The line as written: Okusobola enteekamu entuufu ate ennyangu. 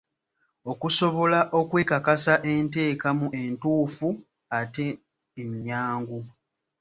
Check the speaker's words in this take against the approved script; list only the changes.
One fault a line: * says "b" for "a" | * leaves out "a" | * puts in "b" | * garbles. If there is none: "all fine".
* puts in "okwekakasa"